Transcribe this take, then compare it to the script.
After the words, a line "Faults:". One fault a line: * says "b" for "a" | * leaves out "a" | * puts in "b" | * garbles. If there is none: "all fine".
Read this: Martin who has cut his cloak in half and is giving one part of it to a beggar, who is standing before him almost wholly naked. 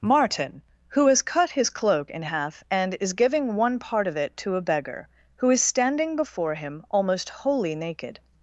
Martin who has cut his cloak in half and is giving one part of it to a beggar, who is standing before him almost wholly naked.
Faults:
all fine